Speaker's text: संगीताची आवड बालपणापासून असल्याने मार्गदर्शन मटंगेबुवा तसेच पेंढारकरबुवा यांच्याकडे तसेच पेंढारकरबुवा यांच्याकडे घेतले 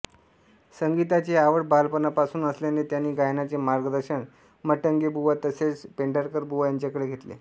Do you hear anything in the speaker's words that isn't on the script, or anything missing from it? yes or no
yes